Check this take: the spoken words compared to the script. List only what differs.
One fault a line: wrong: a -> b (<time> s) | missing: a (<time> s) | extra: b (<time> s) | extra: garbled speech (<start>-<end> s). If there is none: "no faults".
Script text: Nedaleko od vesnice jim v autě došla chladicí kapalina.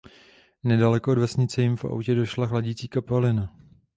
no faults